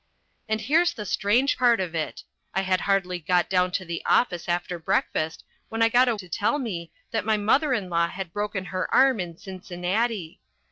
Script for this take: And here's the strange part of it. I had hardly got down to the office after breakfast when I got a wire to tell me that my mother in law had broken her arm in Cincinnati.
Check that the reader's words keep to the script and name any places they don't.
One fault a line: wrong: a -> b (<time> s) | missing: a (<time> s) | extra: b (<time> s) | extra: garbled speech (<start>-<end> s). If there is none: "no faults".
missing: wire (6.1 s)